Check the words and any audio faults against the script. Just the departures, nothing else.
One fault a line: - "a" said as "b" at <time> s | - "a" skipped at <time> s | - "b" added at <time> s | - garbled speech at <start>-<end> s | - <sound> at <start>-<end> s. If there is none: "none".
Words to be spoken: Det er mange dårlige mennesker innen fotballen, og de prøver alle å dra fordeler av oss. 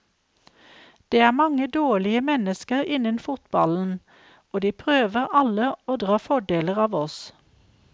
none